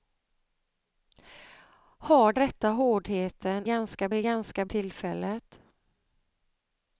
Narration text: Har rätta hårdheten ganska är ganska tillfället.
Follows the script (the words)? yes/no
yes